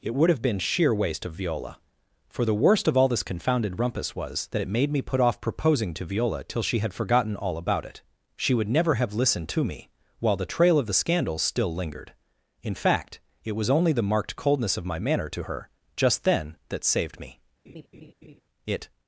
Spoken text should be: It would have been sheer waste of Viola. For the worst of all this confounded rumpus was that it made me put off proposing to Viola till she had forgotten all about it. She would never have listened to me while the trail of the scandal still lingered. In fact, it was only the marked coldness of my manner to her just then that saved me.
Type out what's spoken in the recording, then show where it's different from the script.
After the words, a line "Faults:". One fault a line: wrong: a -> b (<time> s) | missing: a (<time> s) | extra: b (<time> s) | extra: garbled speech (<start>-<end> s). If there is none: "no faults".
It would have been sheer waste of Viola. For the worst of all this confounded rumpus was that it made me put off proposing to Viola till she had forgotten all about it. She would never have listened to me while the trail of the scandal still lingered. In fact, it was only the marked coldness of my manner to her just then that saved me. It
Faults:
extra: It (18.6 s)